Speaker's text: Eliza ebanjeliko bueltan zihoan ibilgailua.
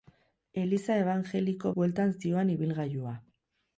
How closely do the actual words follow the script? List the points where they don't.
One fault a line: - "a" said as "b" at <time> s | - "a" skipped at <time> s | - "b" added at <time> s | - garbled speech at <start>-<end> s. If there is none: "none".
none